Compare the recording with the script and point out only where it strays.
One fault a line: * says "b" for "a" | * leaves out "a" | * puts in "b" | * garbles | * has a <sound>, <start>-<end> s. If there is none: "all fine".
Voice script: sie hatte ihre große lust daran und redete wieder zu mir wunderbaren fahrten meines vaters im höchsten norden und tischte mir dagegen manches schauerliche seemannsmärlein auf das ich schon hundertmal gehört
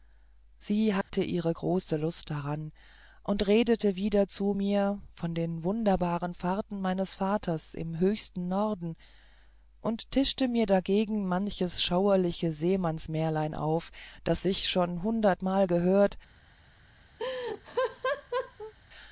* has a dropout, 1.0-1.1 s
* puts in "von den"
* has a laugh, 17.2-18.7 s